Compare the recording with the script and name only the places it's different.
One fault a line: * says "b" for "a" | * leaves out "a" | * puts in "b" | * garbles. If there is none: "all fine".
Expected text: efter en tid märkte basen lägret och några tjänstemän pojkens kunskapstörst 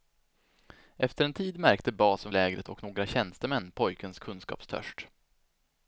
all fine